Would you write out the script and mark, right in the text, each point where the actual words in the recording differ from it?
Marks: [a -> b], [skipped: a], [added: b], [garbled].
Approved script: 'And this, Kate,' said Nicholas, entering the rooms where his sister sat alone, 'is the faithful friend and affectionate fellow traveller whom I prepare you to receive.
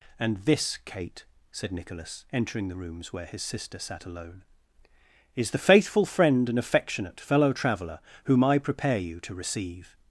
'And this, Kate,' said Nicholas, entering the rooms where his sister sat alone, 'is the faithful friend and affectionate fellow traveller whom I prepare you to receive.